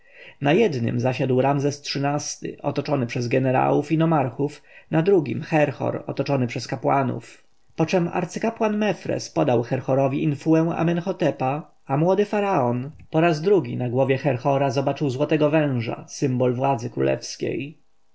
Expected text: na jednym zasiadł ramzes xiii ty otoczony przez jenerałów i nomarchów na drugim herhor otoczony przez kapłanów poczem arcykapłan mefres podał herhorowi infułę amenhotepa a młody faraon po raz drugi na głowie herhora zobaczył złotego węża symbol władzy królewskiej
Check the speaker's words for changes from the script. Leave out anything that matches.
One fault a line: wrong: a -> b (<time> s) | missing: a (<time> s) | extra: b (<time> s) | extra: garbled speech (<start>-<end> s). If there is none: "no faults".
no faults